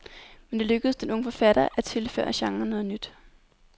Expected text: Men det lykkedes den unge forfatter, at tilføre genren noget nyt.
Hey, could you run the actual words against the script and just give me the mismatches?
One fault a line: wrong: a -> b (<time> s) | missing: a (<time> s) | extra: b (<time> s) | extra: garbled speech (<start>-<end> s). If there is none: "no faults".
no faults